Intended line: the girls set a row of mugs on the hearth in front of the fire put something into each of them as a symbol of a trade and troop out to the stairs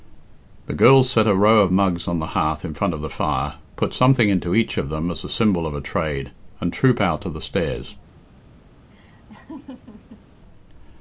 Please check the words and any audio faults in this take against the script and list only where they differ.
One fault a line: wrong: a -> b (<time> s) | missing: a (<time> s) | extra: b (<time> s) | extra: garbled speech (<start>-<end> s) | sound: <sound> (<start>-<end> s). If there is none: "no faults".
sound: laugh (8.9-10.2 s)